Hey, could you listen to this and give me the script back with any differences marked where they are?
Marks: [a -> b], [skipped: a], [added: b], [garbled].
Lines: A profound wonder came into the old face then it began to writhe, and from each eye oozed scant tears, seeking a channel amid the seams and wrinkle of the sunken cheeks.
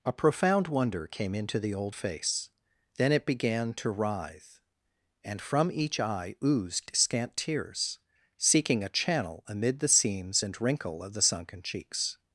A profound wonder came into the old face then it began to writhe, and from each eye oozed scant tears, seeking a channel amid the seams and wrinkle of the sunken cheeks.